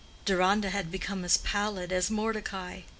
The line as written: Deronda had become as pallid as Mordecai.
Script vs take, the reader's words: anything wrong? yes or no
no